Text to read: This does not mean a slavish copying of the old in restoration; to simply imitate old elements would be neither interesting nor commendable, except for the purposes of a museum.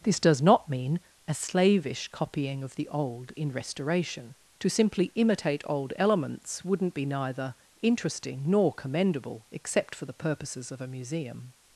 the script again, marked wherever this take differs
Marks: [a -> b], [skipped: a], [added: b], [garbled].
This does not mean a slavish copying of the old in restoration; to simply imitate old elements [would -> wouldn't] be neither interesting nor commendable, except for the purposes of a museum.